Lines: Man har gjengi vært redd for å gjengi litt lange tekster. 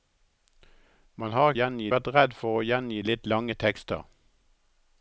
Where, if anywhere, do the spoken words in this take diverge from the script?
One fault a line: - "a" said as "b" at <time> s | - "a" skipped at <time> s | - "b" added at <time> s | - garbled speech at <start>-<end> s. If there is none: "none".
none